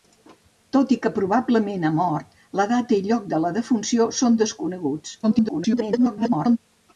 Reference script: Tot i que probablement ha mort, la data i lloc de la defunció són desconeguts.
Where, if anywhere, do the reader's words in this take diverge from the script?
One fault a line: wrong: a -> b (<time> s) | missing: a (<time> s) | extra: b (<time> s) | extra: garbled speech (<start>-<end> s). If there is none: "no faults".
extra: garbled speech (5.2-6.6 s)